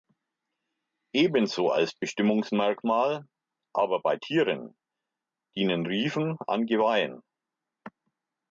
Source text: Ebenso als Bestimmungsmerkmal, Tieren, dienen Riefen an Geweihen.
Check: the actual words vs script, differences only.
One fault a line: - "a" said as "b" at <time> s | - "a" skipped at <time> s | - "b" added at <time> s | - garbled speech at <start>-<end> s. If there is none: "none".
- "aber bei" added at 3.7 s